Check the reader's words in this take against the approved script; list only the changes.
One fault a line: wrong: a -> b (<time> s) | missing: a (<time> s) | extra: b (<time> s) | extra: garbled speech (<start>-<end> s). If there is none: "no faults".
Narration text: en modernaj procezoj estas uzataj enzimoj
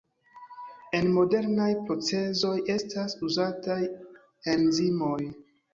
no faults